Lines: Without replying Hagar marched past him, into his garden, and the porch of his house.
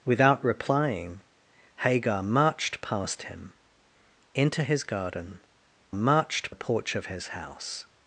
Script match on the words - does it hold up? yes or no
no